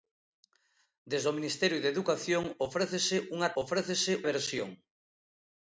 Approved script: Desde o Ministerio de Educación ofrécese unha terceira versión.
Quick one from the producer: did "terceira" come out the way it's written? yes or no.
no